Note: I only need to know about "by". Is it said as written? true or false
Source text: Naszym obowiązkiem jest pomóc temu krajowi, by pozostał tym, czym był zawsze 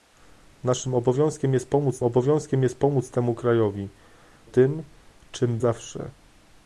false